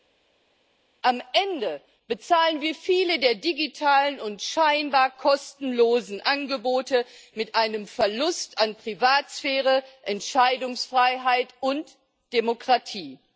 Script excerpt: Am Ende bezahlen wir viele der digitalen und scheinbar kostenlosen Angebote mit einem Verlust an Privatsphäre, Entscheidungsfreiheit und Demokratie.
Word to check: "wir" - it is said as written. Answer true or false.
true